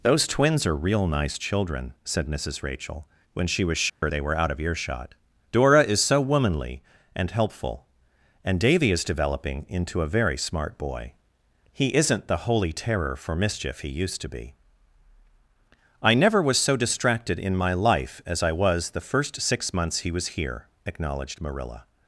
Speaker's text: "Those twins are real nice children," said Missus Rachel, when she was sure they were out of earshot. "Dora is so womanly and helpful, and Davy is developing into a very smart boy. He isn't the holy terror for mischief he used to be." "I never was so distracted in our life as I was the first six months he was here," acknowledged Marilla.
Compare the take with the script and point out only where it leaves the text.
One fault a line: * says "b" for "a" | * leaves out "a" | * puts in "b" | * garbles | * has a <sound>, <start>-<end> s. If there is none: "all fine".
* has a dropout, 3.9-4.0 s
* says "my" for "our"